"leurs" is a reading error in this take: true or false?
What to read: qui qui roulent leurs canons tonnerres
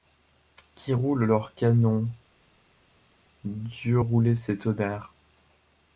false